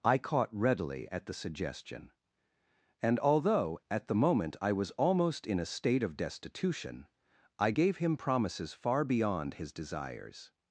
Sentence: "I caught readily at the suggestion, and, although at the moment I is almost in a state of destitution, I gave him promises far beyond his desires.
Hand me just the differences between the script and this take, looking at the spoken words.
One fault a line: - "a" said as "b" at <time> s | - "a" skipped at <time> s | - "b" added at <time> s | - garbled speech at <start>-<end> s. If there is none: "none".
- "is" said as "was" at 4.7 s